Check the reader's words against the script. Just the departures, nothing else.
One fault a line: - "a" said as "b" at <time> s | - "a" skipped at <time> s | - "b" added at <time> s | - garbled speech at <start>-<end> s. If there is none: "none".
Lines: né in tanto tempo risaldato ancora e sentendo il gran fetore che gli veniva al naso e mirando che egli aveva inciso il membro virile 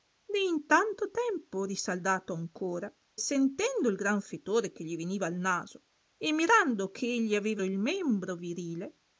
- "e" skipped at 2.9 s
- "inciso" skipped at 7.6 s